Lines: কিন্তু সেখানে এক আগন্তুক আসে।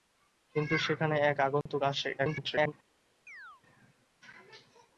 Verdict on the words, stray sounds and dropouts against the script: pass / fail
fail